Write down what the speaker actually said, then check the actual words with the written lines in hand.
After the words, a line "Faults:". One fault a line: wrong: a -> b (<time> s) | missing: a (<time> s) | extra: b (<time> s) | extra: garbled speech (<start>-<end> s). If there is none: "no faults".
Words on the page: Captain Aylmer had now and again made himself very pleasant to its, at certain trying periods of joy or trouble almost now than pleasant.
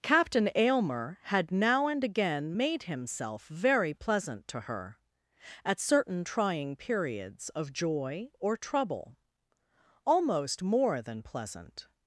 Captain Aylmer had now and again made himself very pleasant to her, at certain trying periods of joy or trouble almost more than pleasant.
Faults:
wrong: its -> her (4.6 s)
wrong: now -> more (10.6 s)